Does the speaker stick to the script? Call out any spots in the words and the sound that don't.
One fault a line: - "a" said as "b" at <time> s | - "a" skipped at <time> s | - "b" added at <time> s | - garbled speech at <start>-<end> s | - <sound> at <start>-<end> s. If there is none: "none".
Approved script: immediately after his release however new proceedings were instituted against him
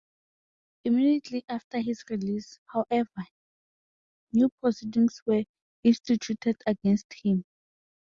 none